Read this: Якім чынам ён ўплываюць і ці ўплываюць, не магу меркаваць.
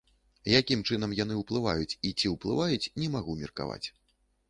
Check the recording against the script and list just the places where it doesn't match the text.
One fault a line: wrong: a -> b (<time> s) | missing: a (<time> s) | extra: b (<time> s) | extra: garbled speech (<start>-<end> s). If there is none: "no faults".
wrong: ён -> яны (1.2 s)